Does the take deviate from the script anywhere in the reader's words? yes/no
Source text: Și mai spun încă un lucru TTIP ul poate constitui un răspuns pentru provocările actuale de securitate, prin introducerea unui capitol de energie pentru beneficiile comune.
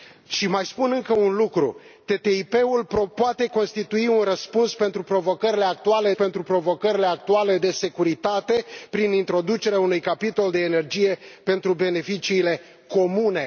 yes